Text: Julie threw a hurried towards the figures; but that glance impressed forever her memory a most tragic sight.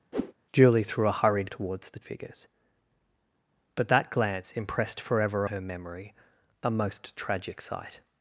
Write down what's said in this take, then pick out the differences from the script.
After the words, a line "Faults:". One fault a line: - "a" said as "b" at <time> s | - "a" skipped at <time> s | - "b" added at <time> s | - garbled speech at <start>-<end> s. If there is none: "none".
Julie threw a hurried towards the figures; but that glance impressed forever her memory a most tragic sight.
Faults:
none